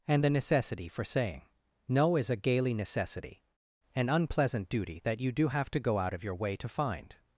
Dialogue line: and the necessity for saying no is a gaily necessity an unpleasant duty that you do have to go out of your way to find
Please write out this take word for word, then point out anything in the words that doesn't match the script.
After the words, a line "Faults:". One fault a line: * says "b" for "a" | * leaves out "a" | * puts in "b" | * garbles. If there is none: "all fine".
and the necessity for saying no is a gaily necessity an unpleasant duty that you do have to go out of your way to find
Faults:
all fine